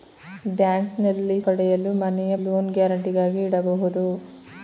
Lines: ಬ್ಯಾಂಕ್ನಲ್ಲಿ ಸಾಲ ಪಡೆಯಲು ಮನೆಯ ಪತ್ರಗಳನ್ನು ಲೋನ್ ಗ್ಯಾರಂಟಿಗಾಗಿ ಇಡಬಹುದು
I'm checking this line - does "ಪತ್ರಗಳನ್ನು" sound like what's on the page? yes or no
no